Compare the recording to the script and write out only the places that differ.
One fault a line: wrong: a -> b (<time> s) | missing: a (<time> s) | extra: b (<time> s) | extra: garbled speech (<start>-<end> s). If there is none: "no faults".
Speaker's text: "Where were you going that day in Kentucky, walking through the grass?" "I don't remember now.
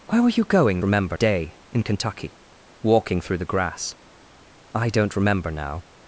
wrong: that -> remember (0.8 s)